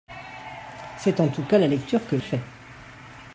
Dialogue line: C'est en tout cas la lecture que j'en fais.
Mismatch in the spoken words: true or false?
true